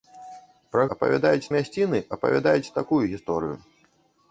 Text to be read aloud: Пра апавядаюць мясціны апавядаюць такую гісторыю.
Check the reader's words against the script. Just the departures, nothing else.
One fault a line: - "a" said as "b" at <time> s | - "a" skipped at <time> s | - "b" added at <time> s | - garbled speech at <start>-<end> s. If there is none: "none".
none